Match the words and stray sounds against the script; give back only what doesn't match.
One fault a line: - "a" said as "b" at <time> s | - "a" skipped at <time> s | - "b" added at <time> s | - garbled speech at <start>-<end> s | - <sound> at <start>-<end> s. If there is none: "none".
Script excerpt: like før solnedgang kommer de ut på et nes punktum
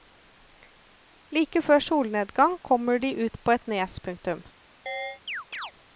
- chirp at 4.9-5.7 s